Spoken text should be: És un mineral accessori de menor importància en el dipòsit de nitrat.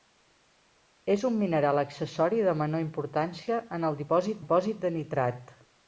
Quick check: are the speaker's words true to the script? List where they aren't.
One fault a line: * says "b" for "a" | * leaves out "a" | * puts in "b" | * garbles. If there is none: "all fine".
* puts in "dipòsit"